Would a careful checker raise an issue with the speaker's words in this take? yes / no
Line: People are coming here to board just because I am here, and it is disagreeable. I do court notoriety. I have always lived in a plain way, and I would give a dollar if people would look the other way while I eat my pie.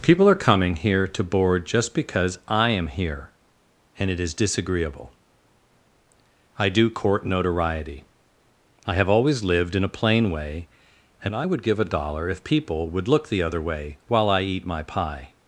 no